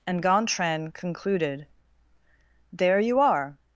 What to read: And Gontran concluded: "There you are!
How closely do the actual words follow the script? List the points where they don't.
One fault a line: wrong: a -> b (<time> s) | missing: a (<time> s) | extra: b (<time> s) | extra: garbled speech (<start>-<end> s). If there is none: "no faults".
no faults